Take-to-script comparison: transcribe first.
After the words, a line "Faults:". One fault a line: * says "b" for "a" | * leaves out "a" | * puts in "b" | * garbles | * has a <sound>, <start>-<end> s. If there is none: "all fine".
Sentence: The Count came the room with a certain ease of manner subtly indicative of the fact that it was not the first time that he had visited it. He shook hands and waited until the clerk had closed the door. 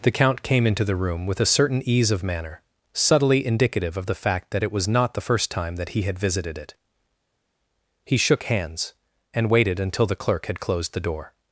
The Count came into the room with a certain ease of manner subtly indicative of the fact that it was not the first time that he had visited it. He shook hands and waited until the clerk had closed the door.
Faults:
* puts in "into"